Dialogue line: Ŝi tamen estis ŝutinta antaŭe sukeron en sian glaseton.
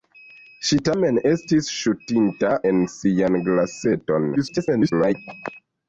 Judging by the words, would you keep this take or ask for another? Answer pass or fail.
fail